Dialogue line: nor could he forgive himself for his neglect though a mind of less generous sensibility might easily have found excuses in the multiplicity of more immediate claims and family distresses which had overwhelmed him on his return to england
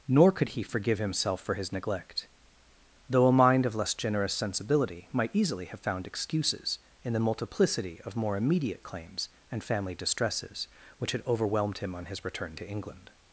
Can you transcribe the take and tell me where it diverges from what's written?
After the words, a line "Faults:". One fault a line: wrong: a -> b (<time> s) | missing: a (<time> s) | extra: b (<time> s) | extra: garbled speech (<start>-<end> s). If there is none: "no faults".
nor could he forgive himself for his neglect though a mind of less generous sensibility might easily have found excuses in the multiplicity of more immediate claims and family distresses which had overwhelmed him on his return to england
Faults:
no faults